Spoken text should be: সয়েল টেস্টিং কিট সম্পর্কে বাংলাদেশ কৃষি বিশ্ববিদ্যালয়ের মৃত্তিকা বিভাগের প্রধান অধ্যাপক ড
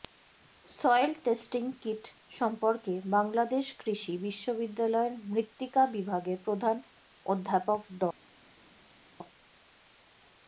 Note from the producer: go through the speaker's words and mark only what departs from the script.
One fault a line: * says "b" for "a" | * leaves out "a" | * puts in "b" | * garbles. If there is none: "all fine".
all fine